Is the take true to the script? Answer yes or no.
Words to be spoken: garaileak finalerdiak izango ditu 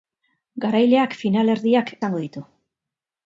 yes